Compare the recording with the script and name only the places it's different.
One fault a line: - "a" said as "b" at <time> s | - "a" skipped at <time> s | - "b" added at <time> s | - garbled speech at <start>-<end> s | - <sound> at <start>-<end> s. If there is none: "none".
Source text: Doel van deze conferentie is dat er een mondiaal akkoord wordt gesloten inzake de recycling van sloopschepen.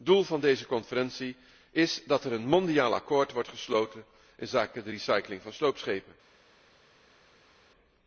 none